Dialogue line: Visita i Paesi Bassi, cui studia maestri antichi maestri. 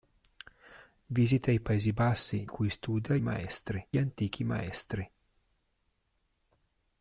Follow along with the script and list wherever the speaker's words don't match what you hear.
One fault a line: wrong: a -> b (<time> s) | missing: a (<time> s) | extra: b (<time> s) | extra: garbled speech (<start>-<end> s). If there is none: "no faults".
no faults